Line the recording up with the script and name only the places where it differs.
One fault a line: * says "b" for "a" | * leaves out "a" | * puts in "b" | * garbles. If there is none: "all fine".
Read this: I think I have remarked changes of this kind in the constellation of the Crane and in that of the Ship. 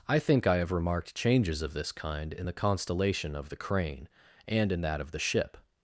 all fine